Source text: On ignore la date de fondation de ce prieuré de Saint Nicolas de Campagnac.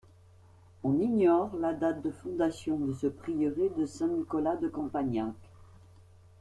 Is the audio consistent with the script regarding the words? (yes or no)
yes